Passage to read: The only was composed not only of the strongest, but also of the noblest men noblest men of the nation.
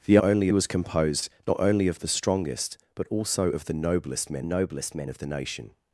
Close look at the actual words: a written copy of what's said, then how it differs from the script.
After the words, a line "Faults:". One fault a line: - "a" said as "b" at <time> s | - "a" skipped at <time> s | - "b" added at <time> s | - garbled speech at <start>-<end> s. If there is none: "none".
The only was composed not only of the strongest, but also of the noblest men noblest men of the nation.
Faults:
none